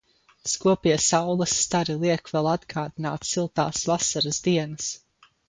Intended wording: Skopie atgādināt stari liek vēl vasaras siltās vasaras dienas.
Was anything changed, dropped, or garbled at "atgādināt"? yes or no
yes